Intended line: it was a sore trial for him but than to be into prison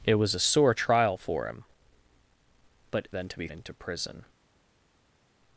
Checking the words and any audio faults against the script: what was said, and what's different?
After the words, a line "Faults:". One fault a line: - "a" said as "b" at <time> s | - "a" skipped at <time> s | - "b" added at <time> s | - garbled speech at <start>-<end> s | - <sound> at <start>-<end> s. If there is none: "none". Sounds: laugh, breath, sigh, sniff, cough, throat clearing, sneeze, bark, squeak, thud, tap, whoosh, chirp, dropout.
it was a sore trial for him but than to be into prison
Faults:
none